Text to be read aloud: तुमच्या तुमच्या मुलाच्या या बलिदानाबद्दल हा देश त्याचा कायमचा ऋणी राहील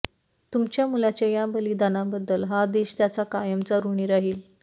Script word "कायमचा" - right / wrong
right